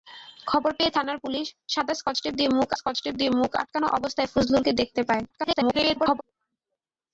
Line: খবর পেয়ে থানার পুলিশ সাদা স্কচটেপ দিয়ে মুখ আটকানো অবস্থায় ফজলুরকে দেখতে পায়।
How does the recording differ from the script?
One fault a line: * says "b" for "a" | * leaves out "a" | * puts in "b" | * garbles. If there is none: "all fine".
* puts in "স্কচটেপ দিয়ে মুখ"
* garbles